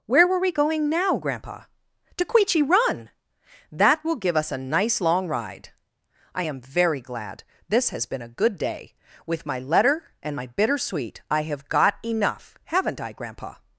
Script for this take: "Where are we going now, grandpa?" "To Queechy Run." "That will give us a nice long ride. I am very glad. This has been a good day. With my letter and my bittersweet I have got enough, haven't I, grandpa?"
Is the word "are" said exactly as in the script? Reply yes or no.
no